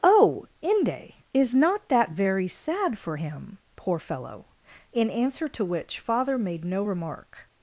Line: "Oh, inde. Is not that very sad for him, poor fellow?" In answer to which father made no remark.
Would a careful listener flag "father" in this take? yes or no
no